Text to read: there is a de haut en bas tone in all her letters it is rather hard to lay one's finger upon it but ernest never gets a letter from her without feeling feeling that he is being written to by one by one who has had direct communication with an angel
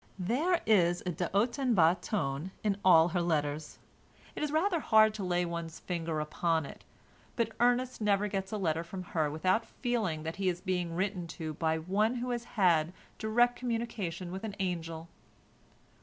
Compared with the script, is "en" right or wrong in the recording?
right